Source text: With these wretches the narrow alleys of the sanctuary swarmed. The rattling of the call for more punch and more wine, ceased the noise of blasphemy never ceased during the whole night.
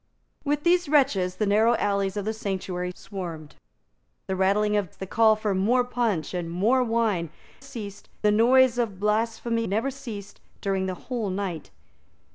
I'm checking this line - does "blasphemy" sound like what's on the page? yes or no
yes